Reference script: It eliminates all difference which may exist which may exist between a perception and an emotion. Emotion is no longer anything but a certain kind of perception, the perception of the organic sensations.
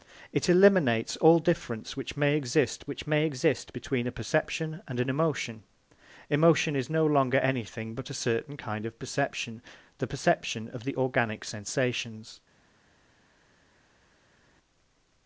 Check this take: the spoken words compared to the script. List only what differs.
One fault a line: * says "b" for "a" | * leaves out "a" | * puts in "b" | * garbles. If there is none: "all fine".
all fine